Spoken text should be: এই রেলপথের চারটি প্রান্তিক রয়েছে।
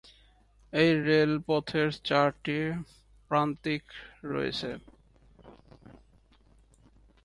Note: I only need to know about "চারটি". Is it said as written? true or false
true